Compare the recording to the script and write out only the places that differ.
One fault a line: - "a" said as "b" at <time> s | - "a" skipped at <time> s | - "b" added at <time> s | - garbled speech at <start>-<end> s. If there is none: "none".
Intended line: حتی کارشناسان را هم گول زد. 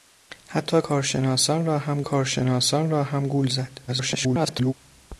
- "کارشناسان را هم" added at 2.0 s
- garbled speech at 3.9-4.7 s